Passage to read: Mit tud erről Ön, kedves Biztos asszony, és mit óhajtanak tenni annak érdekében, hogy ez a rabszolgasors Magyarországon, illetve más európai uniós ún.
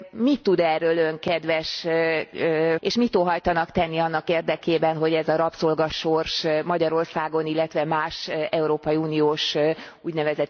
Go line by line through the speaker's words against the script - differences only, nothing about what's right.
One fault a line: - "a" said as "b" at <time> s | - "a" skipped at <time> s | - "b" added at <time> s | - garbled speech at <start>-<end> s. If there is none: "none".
- "Biztos asszony" skipped at 1.9 s